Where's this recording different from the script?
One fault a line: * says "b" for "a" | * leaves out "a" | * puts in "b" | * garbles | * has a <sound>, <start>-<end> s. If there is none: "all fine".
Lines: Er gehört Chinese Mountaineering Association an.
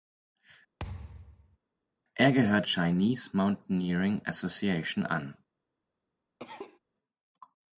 * has a thud, 0.8-1.6 s
* has a cough, 6.4-6.8 s